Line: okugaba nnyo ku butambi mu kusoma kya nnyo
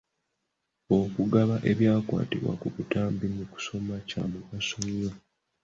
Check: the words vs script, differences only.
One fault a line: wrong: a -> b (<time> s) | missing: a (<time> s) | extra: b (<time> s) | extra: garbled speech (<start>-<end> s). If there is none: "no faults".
wrong: nnyo -> ebyakwatibwa (1.7 s)
extra: mugaso (4.3 s)